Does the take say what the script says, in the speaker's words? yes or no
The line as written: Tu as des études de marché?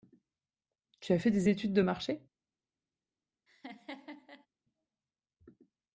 no